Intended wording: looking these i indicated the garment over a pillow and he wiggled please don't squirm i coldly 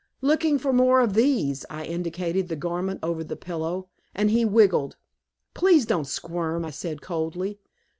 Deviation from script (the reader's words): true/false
true